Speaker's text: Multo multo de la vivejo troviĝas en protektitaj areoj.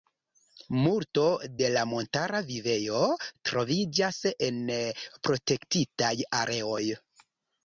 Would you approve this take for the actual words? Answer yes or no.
no